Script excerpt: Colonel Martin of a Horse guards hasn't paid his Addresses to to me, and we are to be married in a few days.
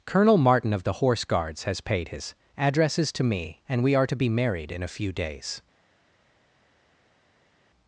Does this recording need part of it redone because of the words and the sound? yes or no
yes